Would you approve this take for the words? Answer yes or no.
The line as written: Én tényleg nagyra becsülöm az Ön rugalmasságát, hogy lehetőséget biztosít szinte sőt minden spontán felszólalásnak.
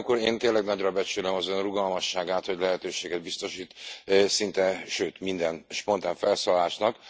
yes